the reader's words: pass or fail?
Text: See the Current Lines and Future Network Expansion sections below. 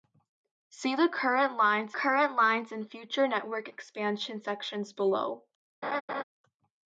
fail